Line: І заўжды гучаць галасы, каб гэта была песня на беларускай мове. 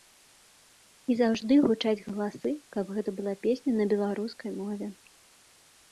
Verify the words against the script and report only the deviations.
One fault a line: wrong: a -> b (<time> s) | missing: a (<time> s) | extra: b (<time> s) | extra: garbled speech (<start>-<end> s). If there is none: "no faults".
no faults